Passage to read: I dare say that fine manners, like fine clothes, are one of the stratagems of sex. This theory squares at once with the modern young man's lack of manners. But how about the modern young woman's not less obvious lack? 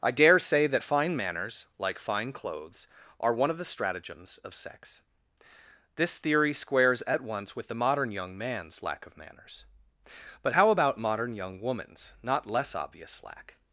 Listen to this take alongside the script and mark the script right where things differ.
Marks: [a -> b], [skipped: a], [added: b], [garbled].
I dare say that fine manners, like fine clothes, are one of the stratagems of sex. This theory squares at once with the modern young man's lack of manners. But how about [skipped: the] modern young woman's not less obvious lack?